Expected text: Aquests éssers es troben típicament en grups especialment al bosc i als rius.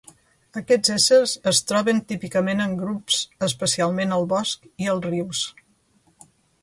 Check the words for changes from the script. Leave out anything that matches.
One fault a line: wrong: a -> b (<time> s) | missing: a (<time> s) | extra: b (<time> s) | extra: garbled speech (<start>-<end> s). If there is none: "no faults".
no faults